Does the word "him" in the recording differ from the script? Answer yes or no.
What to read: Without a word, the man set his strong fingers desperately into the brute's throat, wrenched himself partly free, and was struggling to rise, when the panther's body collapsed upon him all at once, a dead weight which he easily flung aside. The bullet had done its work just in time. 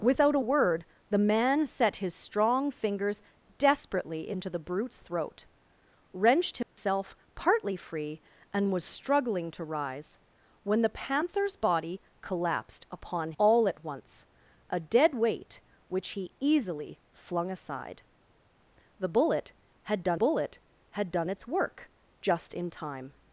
yes